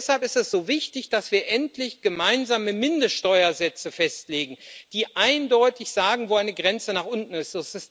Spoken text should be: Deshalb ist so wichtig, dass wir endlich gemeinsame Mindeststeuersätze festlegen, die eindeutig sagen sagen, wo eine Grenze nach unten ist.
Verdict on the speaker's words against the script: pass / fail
fail